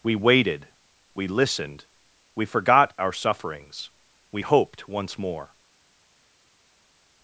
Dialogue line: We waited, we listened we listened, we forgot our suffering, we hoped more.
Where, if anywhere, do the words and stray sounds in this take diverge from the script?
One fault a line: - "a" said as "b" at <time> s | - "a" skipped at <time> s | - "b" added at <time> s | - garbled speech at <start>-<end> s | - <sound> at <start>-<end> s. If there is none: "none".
- "listened we" skipped at 2.5 s
- "suffering" said as "sufferings" at 3.1 s
- "once" added at 4.9 s